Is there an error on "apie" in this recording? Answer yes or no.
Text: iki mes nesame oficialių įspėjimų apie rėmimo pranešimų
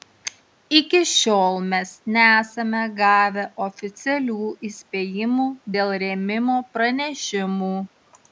yes